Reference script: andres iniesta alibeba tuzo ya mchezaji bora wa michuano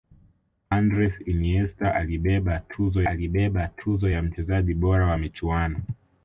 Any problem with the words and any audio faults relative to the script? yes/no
yes